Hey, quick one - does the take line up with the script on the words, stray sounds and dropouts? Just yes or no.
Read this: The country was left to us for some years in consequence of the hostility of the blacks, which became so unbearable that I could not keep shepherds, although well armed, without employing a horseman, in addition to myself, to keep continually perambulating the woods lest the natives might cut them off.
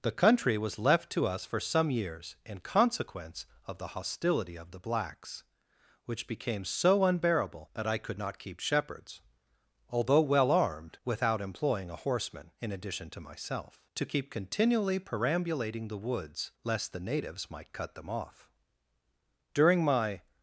no